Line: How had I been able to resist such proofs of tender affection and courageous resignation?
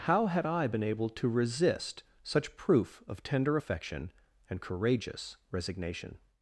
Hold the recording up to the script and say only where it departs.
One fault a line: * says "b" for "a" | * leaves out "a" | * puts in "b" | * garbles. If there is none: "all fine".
* says "proof" for "proofs"